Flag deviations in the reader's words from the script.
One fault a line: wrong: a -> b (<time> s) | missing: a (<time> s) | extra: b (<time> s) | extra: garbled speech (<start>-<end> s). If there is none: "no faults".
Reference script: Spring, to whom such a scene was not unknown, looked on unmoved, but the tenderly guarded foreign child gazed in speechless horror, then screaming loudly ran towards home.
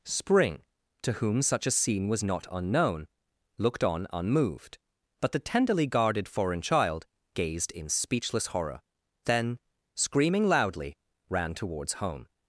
no faults